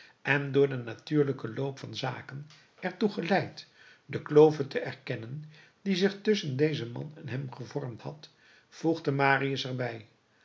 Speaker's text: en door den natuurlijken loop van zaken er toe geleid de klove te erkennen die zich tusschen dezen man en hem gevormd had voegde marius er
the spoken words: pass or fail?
pass